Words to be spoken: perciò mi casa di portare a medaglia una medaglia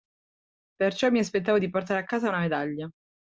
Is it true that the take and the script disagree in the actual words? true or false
true